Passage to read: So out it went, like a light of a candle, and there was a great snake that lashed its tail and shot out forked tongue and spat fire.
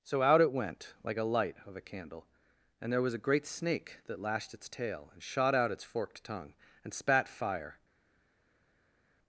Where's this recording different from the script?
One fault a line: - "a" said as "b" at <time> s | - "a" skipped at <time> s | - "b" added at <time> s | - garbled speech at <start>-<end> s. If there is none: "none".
- "its" added at 5.7 s